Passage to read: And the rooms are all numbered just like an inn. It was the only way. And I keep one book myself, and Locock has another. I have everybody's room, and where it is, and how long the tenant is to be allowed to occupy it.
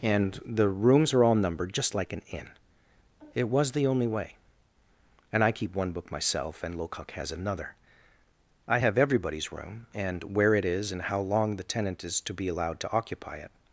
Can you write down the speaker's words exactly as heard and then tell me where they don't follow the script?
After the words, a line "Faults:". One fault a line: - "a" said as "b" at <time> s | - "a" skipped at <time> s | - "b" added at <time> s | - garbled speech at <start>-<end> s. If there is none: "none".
And the rooms are all numbered just like an inn. It was the only way. And I keep one book myself, and Locock has another. I have everybody's room, and where it is, and how long the tenant is to be allowed to occupy it.
Faults:
none